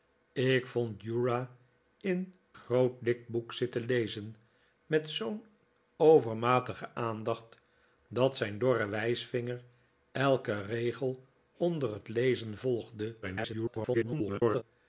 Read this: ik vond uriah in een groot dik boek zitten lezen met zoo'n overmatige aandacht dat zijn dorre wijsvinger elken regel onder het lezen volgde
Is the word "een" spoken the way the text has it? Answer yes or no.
no